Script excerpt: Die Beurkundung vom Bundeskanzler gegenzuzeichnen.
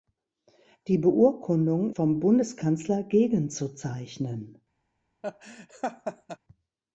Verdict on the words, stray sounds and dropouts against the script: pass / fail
fail